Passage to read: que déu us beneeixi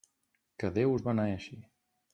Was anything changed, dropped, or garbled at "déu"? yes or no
no